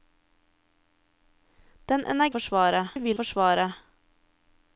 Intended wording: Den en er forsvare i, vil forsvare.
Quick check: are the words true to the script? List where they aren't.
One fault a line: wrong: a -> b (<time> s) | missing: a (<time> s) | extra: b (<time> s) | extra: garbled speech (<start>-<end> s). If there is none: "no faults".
no faults